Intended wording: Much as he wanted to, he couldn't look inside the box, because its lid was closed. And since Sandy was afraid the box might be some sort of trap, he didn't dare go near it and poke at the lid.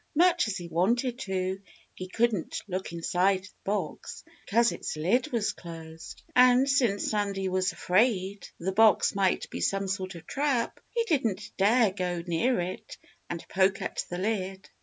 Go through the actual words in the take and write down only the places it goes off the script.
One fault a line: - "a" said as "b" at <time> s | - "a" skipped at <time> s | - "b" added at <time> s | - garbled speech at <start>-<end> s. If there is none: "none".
none